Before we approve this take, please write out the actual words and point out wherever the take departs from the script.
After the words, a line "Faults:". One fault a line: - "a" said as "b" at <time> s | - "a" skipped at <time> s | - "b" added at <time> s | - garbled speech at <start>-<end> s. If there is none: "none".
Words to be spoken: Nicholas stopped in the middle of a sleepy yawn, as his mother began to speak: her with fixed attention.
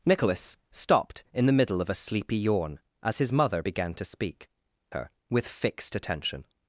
Nicholas stopped in the middle of a sleepy yawn, as his mother began to speak: her with fixed attention.
Faults:
none